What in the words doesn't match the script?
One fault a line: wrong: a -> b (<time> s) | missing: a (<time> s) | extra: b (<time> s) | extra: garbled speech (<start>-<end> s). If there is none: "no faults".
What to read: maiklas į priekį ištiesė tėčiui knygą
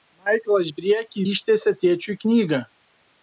no faults